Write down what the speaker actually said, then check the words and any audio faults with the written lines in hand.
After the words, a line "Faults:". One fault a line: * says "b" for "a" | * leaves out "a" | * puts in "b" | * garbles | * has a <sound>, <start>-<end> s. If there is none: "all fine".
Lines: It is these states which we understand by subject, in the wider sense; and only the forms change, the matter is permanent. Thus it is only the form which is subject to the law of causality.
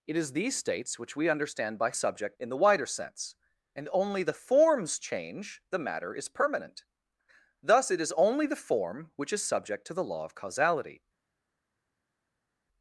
It is these states which we understand by subject, in the wider sense; and only the forms change, the matter is permanent. Thus it is only the form which is subject to the law of causality.
Faults:
all fine